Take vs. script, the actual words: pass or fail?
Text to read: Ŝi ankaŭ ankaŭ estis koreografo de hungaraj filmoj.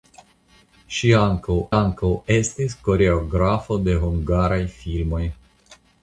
pass